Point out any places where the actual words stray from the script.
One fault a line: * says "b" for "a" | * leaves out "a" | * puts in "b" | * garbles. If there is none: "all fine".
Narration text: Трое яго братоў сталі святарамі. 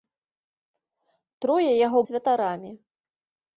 * leaves out "братоў сталі"